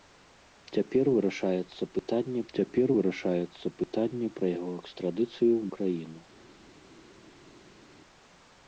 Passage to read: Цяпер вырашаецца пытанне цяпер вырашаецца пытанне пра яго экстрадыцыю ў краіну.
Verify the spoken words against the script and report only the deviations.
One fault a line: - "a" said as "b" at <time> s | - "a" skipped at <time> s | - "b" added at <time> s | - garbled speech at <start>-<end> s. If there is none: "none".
none